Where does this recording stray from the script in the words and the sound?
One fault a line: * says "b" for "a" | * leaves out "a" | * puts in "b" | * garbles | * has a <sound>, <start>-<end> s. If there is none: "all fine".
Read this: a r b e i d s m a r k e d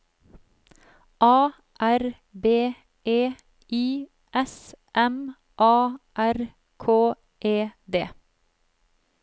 * leaves out "d"